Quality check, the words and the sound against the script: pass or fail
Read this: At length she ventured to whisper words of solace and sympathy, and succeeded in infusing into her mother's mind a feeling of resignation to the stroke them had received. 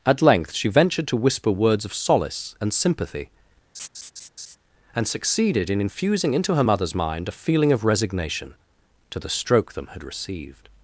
fail